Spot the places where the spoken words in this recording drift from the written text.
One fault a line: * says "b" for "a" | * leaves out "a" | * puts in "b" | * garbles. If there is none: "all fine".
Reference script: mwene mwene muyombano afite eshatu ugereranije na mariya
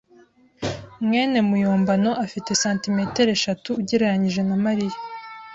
* leaves out "mwene"
* puts in "santimetero"